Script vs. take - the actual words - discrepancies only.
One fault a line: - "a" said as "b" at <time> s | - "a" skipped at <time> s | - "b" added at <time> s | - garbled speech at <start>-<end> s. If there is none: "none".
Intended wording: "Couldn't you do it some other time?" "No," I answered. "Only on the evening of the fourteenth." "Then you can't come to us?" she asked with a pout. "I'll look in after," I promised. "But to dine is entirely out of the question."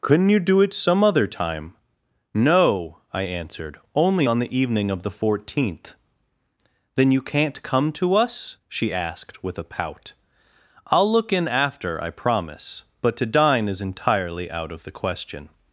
- "promised" said as "promise" at 12.1 s